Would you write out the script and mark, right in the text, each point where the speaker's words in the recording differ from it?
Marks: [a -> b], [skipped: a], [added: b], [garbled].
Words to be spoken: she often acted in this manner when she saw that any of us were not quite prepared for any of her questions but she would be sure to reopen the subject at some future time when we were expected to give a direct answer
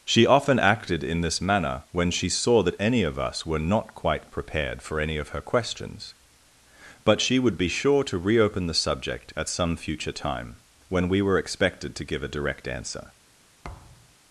she often acted in this manner when she saw that any of us were not quite prepared for any of her questions but she would be sure to reopen the subject at some future time when we were expected to give a direct answer